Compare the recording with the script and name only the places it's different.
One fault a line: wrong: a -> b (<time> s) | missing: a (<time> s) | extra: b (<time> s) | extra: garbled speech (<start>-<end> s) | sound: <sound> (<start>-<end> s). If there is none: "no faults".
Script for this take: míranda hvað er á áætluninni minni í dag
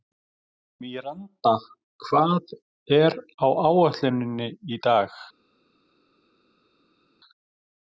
no faults